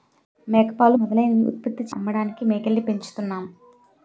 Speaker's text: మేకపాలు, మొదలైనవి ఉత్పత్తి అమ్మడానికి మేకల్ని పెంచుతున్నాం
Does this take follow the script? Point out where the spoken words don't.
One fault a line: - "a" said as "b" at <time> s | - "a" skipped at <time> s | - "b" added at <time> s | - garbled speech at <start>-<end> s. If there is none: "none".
none